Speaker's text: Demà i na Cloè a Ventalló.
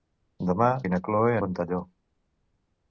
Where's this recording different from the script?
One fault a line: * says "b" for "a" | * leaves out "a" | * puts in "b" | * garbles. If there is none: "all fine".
all fine